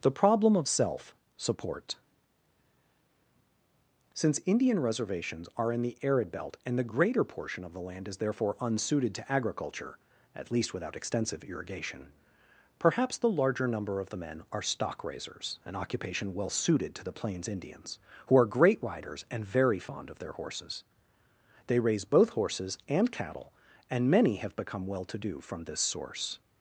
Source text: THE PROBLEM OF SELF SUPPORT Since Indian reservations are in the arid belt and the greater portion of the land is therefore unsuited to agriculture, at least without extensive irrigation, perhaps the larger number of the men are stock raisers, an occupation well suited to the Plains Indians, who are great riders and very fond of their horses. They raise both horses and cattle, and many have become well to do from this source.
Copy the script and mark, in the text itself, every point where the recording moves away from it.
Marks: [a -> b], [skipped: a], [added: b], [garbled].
THE PROBLEM OF SELF SUPPORT Since Indian reservations are in the arid belt and the greater portion of the land is therefore unsuited to agriculture, at least without extensive irrigation, perhaps the larger number of the men are stock raisers, an occupation well suited to the Plains Indians, who are great riders and very fond of their horses. They raise both horses and cattle, and many have become well to do from this source.